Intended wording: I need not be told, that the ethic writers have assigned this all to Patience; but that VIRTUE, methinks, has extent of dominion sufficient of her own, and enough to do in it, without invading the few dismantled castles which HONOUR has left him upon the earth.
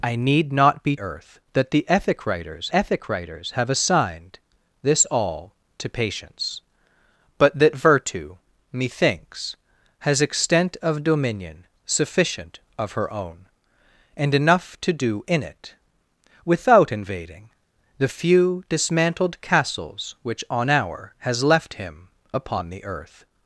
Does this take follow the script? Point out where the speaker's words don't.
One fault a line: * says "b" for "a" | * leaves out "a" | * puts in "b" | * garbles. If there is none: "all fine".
* says "earth" for "told"
* puts in "ethic writers"